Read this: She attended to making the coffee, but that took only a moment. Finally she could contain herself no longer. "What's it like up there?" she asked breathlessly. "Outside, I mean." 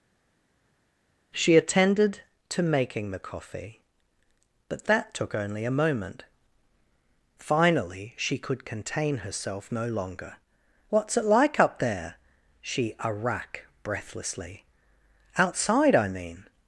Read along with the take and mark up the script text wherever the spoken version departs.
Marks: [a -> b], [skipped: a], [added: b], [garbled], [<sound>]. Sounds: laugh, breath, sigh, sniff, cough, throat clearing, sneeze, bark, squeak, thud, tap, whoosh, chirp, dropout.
She attended to making the coffee, but that took only a moment. Finally she could contain herself no longer. "What's it like up there?" she [asked -> arrack] breathlessly. "Outside, I mean."